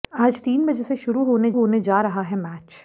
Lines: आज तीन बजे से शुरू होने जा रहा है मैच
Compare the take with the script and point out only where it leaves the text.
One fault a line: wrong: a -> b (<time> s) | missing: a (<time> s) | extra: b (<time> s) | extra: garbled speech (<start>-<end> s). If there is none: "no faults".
extra: होने (1.5 s)